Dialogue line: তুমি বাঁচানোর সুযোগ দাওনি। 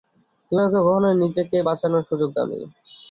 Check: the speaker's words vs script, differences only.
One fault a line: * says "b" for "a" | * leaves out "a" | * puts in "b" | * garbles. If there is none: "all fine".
* puts in "আমাকে কখনোই নিজেকে"